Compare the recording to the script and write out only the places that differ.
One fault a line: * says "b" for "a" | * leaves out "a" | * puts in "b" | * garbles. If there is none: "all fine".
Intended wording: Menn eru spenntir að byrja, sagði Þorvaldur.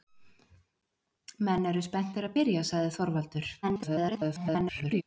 * garbles